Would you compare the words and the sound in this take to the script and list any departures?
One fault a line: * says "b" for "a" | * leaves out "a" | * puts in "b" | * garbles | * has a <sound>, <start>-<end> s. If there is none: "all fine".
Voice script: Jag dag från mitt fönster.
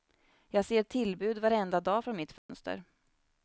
* puts in "ser tillbud varenda"
* has a dropout, 2.4-2.5 s